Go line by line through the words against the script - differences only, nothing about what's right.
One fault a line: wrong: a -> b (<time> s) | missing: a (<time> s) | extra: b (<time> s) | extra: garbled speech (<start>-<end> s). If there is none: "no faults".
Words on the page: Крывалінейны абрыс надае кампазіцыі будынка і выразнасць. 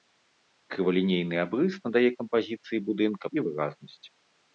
no faults